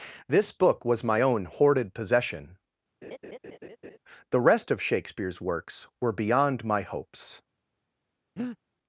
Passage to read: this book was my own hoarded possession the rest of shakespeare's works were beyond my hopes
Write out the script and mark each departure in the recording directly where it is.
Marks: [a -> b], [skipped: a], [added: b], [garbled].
this book was my own hoarded possession the rest of shakespeare's works were beyond my hopes